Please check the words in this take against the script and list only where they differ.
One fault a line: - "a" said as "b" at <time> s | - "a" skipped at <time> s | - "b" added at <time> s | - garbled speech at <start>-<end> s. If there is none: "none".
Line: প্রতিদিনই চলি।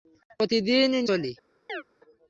none